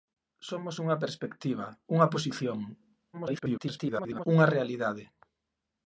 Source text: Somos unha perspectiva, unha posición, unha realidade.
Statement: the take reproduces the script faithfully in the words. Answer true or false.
false